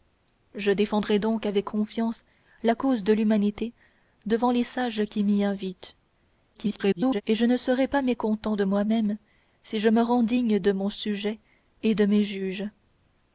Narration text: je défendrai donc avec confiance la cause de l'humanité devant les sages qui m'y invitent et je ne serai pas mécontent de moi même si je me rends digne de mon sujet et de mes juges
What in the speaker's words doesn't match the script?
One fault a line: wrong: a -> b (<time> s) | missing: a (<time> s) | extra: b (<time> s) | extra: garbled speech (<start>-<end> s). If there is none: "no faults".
extra: garbled speech (6.5-7.2 s)